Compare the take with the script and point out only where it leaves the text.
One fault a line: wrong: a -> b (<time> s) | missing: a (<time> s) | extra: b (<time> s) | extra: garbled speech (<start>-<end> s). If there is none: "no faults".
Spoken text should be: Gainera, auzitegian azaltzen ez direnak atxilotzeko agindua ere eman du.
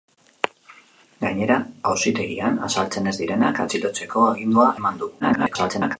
missing: ere (4.7 s)
extra: garbled speech (5.2-6.0 s)